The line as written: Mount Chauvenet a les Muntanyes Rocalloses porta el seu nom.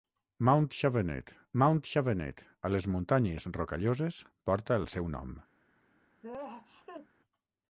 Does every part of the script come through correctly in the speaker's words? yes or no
no